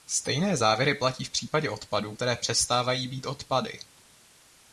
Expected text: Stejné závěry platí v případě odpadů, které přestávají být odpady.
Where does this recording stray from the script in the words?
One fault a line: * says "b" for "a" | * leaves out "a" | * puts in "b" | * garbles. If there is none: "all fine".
all fine